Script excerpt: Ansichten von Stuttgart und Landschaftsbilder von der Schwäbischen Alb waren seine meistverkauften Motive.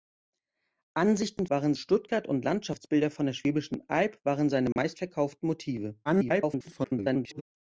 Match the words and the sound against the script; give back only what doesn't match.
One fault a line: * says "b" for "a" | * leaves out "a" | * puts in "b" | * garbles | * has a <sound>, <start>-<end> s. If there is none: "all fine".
* says "waren" for "von"
* has a dropout, 4.7-4.8 s
* garbles